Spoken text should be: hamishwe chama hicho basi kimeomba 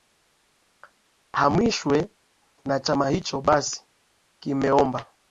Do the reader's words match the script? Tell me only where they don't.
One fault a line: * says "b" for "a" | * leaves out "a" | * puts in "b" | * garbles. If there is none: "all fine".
* puts in "na"